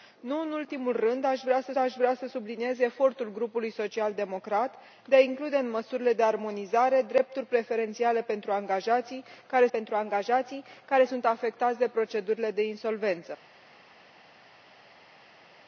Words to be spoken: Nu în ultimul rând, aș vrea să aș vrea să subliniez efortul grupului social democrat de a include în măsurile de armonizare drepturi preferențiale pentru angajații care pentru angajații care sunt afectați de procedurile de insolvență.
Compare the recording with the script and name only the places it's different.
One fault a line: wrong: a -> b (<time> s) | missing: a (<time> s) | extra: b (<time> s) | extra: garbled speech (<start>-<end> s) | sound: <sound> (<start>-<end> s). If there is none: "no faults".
no faults